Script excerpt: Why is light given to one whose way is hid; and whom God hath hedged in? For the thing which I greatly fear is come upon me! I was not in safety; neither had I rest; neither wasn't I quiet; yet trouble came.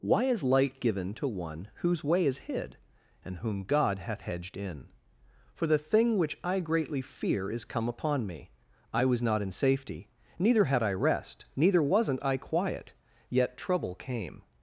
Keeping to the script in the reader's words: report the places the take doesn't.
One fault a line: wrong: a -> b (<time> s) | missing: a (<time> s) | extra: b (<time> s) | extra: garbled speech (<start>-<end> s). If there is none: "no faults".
no faults